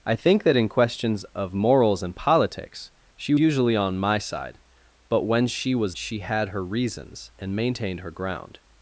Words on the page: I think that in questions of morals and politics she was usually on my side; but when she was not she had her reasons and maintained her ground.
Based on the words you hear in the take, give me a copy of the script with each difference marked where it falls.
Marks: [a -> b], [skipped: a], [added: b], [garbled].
I think that in questions of morals and politics she [skipped: was] usually on my side; but when she was [skipped: not] she had her reasons and maintained her ground.